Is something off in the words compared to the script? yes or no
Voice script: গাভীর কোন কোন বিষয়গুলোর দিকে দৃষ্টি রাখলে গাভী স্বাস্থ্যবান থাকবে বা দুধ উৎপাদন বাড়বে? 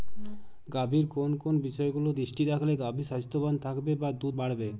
yes